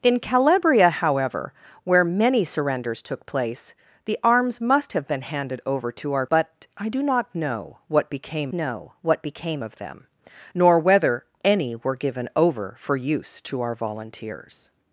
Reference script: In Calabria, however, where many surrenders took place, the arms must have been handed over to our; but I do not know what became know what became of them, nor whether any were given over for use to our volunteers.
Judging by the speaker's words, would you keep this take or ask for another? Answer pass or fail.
pass